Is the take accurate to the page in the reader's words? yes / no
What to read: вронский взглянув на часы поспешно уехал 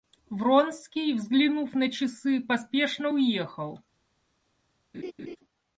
yes